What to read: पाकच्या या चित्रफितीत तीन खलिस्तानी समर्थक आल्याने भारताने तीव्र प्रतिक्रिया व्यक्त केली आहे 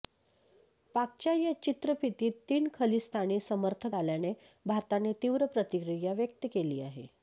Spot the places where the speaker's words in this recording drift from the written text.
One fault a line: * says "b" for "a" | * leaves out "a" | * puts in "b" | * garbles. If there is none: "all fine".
all fine